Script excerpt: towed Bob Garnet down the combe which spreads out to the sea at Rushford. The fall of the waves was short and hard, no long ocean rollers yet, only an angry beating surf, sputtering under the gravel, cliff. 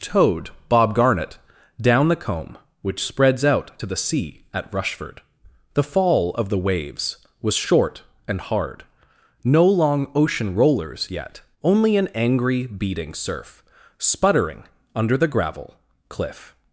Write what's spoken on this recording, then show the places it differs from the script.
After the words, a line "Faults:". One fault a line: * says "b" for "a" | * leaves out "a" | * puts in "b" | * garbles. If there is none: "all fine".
towed Bob Garnet down the combe which spreads out to the sea at Rushford. The fall of the waves was short and hard, no long ocean rollers yet, only an angry beating surf, sputtering under the gravel, cliff.
Faults:
all fine